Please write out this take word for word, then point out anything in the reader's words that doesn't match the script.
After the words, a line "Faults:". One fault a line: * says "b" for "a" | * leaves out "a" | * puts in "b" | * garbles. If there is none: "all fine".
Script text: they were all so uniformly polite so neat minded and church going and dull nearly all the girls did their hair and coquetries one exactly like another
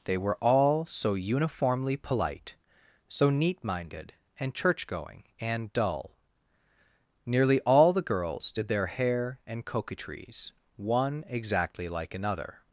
they were all so uniformly polite so neat minded and church going and dull nearly all the girls did their hair and coquetries one exactly like another
Faults:
all fine